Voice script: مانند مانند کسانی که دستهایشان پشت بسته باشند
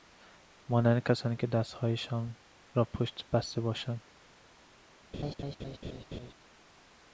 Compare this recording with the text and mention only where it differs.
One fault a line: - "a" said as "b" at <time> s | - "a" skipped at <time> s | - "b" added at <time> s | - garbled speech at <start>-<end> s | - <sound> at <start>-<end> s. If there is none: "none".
- "مانند" skipped at 1.0 s
- "را" added at 2.7 s
- laugh at 5.1-6.3 s